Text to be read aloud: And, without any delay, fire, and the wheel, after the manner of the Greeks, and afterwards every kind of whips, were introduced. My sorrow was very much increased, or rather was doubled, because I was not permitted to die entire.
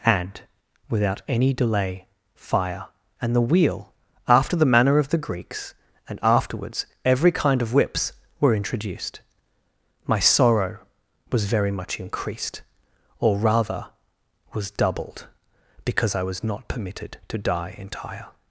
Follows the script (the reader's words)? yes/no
yes